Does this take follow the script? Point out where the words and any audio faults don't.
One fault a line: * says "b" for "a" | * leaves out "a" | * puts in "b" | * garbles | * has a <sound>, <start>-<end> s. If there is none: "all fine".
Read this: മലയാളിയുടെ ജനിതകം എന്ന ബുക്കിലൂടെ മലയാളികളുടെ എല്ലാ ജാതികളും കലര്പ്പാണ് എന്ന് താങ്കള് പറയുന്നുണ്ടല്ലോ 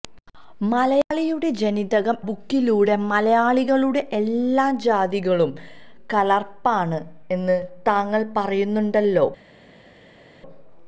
* leaves out "എന്ന"